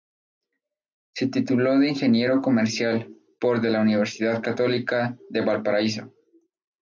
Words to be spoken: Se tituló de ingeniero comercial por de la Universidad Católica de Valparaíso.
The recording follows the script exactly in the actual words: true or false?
true